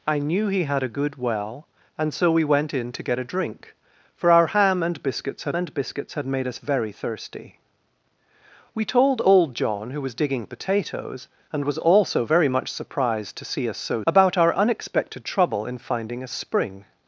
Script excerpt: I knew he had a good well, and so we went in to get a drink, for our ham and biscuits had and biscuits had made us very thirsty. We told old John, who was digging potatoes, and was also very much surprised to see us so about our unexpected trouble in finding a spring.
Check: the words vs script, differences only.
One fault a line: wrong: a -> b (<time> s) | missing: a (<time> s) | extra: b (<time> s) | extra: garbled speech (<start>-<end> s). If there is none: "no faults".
no faults